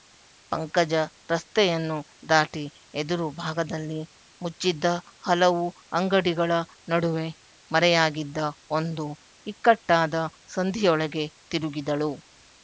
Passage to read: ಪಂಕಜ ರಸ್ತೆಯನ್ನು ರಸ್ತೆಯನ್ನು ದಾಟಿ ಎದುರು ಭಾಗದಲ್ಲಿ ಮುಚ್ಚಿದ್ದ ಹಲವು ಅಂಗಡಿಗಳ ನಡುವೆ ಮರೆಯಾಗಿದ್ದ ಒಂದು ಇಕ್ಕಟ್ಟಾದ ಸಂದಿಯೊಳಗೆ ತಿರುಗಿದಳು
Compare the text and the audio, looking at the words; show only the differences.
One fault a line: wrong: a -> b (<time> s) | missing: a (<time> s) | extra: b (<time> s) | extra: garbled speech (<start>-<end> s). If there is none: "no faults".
missing: ರಸ್ತೆಯನ್ನು (2.0 s)